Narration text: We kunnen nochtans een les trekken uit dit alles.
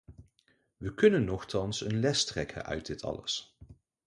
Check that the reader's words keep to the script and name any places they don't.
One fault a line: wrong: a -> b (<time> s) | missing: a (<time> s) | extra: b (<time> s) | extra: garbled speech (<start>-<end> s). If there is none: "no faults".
no faults